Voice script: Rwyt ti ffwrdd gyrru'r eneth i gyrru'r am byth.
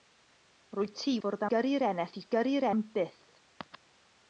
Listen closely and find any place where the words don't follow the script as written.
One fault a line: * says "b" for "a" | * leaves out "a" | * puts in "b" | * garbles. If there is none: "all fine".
all fine